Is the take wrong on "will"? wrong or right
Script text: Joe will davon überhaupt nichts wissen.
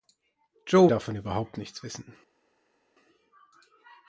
wrong